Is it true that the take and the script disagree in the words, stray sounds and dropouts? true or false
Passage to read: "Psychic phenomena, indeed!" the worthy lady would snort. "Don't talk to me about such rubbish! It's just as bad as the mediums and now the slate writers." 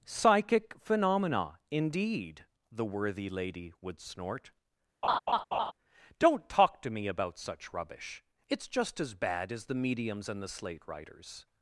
true